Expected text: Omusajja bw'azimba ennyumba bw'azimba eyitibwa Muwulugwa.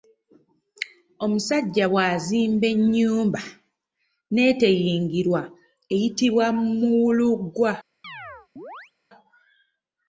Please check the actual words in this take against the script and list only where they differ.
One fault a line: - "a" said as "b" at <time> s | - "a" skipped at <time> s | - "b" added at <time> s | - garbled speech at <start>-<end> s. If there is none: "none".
- "bw'azimba" said as "n'eteyingirwa" at 4.3 s